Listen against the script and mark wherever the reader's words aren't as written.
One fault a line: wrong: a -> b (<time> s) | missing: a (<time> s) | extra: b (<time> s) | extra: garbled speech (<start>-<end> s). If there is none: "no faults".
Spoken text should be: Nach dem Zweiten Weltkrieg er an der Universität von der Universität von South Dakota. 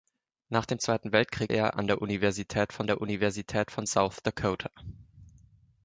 no faults